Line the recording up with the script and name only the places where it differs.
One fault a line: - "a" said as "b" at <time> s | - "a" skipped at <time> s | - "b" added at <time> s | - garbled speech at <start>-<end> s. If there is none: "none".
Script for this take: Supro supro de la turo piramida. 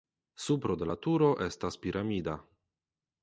- "supro" skipped at 0.8 s
- "estas" added at 1.5 s